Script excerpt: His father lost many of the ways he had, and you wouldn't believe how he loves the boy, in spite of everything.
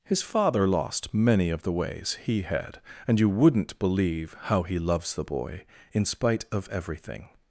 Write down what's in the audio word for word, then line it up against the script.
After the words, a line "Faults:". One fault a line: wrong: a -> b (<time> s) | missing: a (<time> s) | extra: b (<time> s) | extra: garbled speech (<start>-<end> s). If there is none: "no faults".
His father lost many of the ways he had, and you wouldn't believe how he loves the boy, in spite of everything.
Faults:
no faults